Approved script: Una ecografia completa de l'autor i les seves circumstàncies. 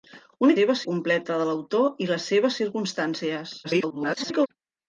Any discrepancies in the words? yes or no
yes